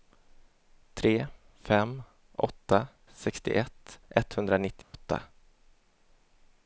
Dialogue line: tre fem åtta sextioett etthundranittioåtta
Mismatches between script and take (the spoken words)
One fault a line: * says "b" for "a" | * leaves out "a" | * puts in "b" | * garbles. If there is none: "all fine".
all fine